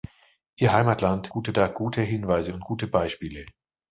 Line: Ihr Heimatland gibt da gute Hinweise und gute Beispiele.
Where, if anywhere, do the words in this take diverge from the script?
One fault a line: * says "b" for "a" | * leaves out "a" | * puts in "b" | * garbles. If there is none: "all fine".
* says "gute" for "gibt"